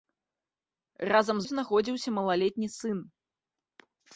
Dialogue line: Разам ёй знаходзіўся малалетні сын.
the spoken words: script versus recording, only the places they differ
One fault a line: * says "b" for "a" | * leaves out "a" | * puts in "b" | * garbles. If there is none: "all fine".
all fine